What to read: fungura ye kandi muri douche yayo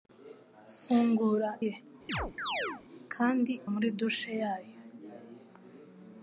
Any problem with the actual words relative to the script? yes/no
no